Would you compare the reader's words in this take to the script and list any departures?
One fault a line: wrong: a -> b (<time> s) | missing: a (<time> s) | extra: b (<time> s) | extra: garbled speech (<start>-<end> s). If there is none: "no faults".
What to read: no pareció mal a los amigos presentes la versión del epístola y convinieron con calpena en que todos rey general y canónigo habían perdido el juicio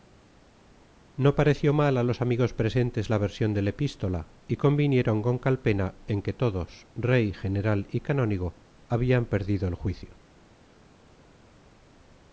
no faults